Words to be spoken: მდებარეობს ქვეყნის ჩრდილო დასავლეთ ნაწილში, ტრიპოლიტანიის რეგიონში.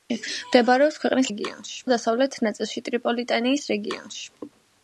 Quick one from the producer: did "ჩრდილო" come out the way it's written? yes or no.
no